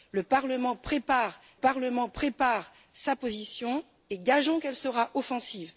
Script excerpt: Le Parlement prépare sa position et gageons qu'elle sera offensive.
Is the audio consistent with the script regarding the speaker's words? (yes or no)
no